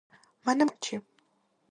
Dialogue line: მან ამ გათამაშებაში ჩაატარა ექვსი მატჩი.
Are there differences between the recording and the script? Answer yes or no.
yes